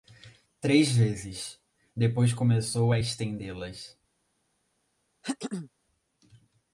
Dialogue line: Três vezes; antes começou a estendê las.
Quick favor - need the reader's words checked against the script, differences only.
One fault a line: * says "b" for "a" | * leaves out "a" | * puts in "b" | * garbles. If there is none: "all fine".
* says "depois" for "antes"